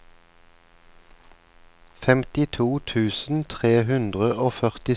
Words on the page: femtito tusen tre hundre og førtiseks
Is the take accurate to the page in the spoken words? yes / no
yes